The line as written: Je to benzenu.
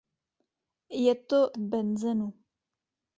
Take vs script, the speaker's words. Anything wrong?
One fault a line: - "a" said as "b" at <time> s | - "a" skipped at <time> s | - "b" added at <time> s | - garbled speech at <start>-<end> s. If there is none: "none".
none